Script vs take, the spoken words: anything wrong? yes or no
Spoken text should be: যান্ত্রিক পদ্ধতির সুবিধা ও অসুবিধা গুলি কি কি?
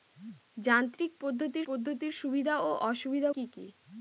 yes